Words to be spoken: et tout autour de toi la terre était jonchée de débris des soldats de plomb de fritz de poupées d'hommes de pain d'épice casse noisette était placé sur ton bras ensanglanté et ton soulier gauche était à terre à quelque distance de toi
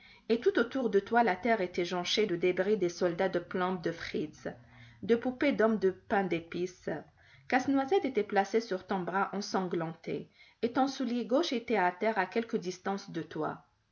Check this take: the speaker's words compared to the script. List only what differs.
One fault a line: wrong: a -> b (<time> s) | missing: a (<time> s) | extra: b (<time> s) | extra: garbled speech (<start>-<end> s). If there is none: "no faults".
no faults